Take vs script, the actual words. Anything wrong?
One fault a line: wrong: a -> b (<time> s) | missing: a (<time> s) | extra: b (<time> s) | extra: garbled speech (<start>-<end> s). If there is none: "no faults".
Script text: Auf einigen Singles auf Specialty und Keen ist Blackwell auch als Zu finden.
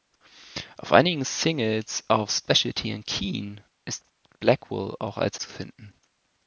no faults